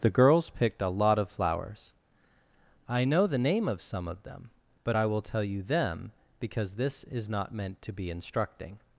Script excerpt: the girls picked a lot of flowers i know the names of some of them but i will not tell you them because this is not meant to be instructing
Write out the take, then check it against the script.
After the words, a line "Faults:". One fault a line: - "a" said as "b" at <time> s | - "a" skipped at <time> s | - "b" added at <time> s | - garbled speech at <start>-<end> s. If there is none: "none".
the girls picked a lot of flowers i know the name of some of them but i will tell you them because this is not meant to be instructing
Faults:
- "names" said as "name" at 3.4 s
- "not" skipped at 5.2 s